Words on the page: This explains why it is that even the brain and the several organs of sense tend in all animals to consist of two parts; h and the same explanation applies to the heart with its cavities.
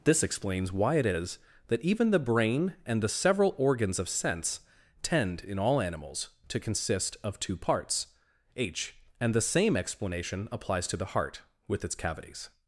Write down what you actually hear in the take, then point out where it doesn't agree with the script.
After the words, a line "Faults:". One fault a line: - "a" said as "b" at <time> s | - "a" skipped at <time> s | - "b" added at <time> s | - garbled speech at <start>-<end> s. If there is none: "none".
This explains why it is that even the brain and the several organs of sense tend in all animals to consist of two parts; h and the same explanation applies to the heart with its cavities.
Faults:
none